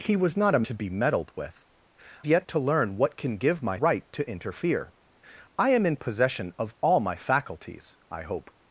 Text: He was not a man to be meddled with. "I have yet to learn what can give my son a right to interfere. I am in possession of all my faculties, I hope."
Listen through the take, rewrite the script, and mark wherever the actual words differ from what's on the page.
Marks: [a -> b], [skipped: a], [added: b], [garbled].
He was not a [skipped: man] to be meddled with. [skipped: "I have] yet to learn what can give my [skipped: son a] right to interfere. I am in possession of all my faculties, I hope."